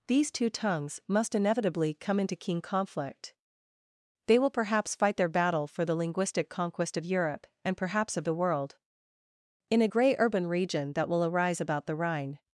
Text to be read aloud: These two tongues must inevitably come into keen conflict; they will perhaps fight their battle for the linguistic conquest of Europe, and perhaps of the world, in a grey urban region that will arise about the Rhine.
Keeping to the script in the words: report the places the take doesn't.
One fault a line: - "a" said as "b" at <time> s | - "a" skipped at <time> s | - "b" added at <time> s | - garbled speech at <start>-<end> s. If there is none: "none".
none